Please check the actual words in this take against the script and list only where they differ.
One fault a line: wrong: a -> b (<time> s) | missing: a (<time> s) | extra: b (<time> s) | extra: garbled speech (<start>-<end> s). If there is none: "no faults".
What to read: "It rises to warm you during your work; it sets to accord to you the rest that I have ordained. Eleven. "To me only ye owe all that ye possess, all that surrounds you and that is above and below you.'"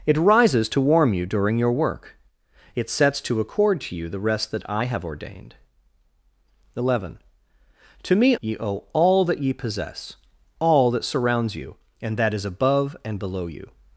missing: only (8.3 s)